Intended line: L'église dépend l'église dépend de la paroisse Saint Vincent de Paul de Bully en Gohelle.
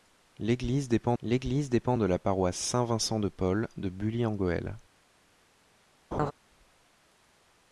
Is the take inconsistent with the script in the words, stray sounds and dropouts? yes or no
yes